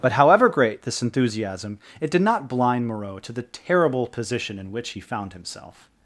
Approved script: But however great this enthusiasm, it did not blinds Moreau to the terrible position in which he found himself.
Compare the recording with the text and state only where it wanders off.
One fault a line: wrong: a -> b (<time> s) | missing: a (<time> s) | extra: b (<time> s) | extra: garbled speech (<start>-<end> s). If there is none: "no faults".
wrong: blinds -> blind (2.5 s)